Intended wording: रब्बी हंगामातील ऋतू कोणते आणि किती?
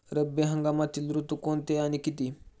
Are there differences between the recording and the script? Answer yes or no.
no